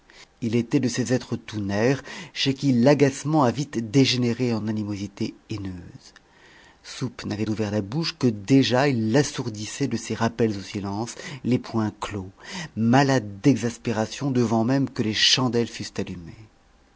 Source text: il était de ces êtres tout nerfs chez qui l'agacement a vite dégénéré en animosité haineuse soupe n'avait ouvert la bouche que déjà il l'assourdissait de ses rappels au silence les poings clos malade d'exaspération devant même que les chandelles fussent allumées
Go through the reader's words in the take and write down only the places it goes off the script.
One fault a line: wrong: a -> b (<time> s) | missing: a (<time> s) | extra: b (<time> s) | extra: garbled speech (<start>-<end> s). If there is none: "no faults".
no faults